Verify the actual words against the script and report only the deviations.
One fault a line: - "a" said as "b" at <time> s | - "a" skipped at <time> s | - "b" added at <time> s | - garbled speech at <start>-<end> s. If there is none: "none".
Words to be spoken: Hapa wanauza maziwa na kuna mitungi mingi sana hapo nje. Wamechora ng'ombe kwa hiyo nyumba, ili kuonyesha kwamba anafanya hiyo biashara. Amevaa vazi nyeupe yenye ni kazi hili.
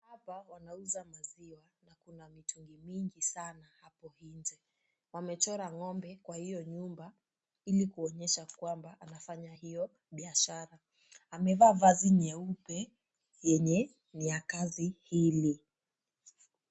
- "ya" added at 14.3 s